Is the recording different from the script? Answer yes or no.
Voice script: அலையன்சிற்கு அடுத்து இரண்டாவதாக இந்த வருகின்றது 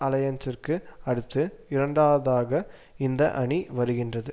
yes